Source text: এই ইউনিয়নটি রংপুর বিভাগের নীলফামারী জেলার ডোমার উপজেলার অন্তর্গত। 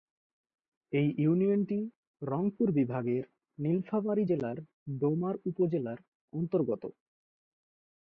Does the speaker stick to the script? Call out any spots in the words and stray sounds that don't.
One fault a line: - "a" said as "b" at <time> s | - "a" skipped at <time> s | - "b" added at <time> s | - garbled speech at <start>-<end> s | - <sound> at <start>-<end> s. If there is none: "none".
none